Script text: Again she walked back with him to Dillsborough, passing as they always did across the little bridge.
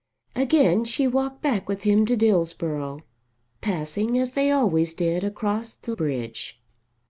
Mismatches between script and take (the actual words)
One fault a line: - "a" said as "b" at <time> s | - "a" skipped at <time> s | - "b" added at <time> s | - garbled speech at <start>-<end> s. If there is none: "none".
- "little" skipped at 5.9 s